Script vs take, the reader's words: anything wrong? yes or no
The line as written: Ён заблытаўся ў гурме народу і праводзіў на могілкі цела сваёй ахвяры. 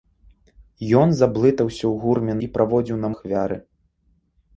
yes